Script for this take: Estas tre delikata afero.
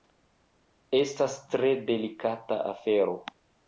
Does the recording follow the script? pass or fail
pass